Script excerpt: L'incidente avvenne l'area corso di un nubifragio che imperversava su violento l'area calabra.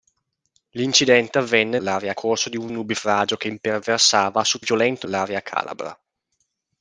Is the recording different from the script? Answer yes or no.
no